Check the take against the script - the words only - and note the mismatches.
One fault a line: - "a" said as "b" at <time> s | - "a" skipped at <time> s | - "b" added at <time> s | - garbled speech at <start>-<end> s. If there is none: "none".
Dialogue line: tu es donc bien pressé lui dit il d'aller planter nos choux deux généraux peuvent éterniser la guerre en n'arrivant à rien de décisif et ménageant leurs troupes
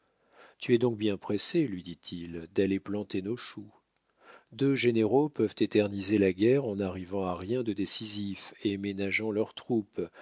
none